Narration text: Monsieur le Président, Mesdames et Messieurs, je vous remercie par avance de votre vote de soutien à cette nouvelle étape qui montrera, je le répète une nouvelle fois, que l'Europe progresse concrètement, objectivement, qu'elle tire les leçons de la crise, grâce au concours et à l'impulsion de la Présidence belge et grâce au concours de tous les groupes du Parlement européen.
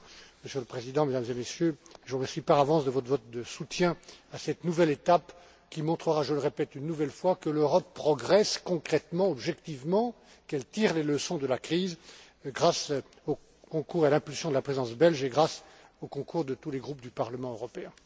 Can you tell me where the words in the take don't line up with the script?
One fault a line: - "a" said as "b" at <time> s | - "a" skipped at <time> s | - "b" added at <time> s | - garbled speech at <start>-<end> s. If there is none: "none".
none